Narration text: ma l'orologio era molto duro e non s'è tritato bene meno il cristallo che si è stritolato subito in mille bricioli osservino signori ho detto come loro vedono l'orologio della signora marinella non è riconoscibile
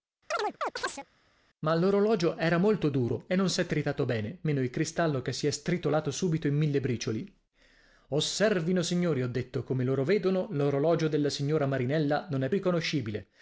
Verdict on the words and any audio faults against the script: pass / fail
fail